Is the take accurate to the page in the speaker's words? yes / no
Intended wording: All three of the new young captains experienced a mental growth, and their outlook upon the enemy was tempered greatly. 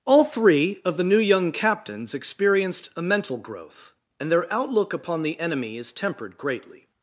no